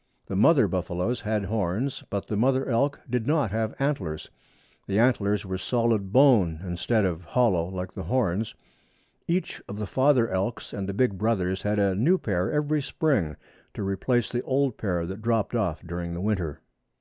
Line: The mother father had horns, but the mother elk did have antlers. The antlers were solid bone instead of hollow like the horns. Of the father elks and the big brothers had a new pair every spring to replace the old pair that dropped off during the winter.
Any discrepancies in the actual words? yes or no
yes